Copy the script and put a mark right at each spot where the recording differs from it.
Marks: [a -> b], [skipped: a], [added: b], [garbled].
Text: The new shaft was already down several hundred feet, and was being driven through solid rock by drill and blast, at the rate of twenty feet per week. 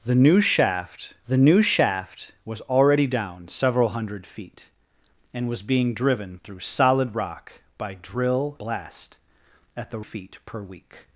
The new shaft [added: the new shaft] was already down several hundred feet, and was being driven through solid rock by drill [skipped: and] blast, at the [skipped: rate of twenty] feet per week.